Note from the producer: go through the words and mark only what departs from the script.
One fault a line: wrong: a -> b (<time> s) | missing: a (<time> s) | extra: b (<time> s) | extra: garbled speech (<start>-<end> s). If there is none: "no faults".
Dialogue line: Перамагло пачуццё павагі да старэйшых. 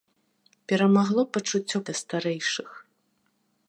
missing: павагі (1.8 s)